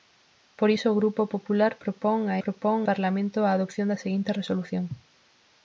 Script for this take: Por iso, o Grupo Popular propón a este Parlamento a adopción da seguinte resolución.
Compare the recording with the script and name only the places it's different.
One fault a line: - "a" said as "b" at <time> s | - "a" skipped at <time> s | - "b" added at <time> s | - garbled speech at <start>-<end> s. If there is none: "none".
- "este" said as "propón" at 2.4 s